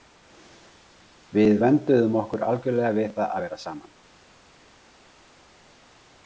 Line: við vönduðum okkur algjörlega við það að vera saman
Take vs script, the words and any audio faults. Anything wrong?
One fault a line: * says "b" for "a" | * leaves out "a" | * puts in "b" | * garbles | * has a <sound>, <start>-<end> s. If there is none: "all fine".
all fine